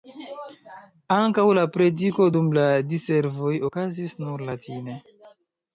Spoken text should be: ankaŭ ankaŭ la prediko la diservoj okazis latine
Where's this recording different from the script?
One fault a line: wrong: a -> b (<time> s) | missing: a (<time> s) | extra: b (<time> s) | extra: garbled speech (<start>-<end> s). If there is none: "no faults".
missing: ankaŭ (1.4 s)
extra: dum (2.4 s)
extra: nur (4.3 s)